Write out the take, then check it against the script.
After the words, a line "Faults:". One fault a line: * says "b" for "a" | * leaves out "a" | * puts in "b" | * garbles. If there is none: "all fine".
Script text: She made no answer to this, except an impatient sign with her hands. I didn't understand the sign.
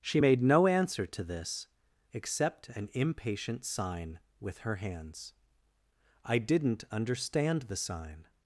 She made no answer to this, except an impatient sign with her hands. I didn't understand the sign.
Faults:
all fine